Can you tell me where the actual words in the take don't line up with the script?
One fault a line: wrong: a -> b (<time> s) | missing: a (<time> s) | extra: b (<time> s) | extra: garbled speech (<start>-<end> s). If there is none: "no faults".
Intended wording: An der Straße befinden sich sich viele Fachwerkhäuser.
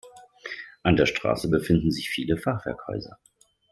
missing: sich (2.1 s)